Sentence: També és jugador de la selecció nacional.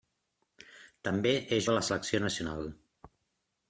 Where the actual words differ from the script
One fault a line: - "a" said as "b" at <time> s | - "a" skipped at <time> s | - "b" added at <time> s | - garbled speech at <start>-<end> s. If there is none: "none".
- "jugador" skipped at 1.7 s